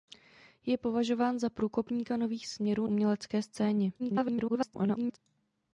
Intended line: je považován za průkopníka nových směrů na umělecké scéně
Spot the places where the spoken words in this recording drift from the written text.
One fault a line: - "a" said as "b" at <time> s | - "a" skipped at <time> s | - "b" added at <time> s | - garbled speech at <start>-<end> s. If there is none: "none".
- "na" skipped at 2.9 s
- garbled speech at 4.0-5.2 s